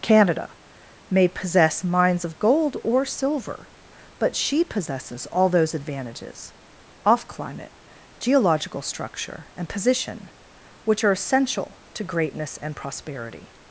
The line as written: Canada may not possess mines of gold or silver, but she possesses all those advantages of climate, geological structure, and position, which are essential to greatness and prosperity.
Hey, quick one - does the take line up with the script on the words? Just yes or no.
no